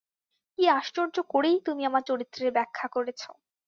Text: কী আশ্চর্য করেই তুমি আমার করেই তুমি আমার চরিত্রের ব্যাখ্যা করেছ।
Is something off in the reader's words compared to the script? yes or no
yes